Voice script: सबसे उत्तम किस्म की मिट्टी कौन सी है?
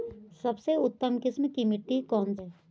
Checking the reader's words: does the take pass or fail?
fail